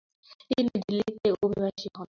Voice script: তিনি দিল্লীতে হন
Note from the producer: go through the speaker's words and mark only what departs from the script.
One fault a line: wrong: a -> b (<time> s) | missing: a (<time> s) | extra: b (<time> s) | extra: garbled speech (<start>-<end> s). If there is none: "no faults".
extra: অভিবাসী (1.4 s)